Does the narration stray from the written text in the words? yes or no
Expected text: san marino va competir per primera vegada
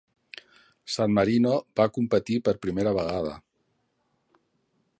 no